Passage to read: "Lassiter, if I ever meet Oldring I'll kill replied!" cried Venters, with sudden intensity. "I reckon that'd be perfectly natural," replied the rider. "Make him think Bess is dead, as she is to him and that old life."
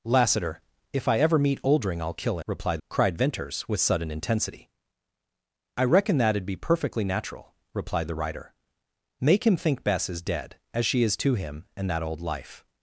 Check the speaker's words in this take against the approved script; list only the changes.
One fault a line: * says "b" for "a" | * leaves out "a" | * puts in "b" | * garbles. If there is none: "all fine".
all fine